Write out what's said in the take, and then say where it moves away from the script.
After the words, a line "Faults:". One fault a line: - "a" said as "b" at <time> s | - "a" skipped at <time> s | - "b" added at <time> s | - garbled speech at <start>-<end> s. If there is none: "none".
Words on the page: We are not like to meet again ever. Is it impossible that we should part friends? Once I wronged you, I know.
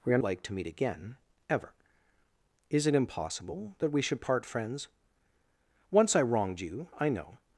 We are like to meet again ever. Is it impossible that we should part friends? Once I wronged you, I know.
Faults:
- "not" skipped at 0.2 s